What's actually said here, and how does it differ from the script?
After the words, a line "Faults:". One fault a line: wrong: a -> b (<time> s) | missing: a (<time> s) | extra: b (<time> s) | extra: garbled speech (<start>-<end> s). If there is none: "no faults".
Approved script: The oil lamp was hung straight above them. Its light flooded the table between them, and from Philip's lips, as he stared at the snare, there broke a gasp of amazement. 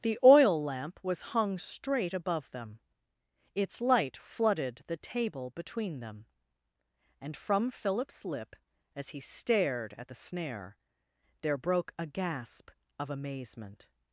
The oil lamp was hung straight above them. Its light flooded the table between them, and from Philip's lip, as he stared at the snare, there broke a gasp of amazement.
Faults:
wrong: lips -> lip (8.2 s)